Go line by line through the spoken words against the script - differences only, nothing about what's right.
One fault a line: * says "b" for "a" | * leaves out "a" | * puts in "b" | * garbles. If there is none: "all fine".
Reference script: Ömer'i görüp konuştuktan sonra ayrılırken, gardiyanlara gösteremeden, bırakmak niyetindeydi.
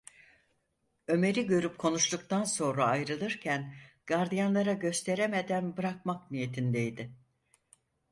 all fine